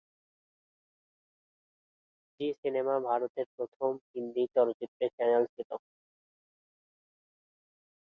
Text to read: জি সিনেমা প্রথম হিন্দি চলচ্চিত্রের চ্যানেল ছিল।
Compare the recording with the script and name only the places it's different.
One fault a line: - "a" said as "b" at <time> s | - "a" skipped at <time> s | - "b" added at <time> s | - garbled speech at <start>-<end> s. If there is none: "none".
- "ভারতের" added at 3.1 s